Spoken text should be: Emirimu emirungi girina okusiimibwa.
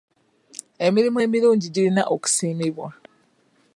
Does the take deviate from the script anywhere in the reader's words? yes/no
no